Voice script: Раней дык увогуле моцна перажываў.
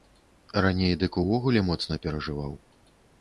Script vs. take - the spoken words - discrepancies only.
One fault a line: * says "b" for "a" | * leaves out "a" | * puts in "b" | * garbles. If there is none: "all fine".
all fine